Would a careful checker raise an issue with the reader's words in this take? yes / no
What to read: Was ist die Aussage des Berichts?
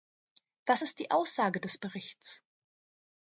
no